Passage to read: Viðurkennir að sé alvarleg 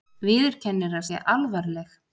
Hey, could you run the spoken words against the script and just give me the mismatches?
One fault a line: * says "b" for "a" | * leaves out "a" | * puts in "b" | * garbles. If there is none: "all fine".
all fine